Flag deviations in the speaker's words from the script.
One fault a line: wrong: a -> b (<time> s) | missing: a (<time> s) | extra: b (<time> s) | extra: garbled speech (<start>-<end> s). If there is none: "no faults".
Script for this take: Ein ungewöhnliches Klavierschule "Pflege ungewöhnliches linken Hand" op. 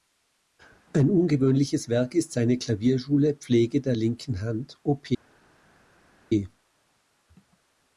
extra: Werk ist seine (1.9 s)
wrong: ungewöhnliches -> der (3.8 s)